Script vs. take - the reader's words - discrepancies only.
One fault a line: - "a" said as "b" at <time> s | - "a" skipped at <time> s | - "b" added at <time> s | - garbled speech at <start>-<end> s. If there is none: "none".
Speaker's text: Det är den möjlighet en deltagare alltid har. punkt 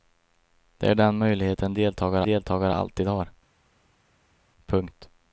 - "deltagare" added at 2.2 s